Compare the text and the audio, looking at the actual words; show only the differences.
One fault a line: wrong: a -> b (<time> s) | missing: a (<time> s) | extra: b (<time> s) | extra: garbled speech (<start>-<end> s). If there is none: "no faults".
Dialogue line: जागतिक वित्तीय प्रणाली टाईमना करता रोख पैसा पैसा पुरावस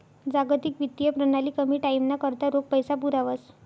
extra: कमी (1.6 s)
missing: पैसा (2.9 s)